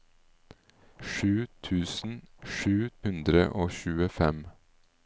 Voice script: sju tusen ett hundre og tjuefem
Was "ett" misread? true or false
true